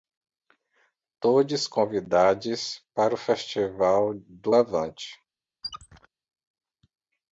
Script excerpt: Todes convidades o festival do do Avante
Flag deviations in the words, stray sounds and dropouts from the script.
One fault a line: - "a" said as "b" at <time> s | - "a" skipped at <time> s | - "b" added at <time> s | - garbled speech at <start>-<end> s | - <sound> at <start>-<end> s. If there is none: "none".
- "para" added at 3.0 s
- "do" skipped at 4.5 s
- squeak at 5.6-6.1 s